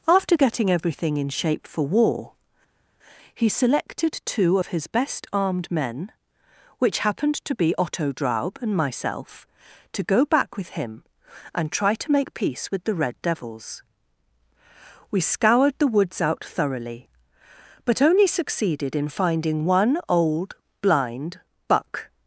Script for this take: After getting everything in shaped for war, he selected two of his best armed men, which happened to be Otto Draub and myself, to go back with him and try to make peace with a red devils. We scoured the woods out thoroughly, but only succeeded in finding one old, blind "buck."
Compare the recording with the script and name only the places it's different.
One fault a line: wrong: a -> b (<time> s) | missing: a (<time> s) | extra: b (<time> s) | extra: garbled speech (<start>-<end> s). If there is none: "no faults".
wrong: shaped -> shape (1.3 s)
wrong: a -> the (12.8 s)